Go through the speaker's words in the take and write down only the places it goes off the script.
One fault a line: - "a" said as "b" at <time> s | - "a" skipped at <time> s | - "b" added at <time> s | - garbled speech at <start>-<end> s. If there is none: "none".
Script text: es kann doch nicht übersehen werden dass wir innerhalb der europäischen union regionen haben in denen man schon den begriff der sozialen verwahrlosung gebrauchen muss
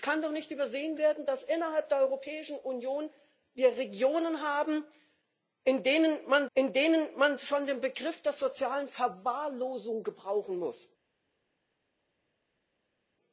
- "in denen man" added at 6.6 s